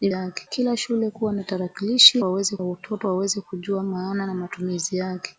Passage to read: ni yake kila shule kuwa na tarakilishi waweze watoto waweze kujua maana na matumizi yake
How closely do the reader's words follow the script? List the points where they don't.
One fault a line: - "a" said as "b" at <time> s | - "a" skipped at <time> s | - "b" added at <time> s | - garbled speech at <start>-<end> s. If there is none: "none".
none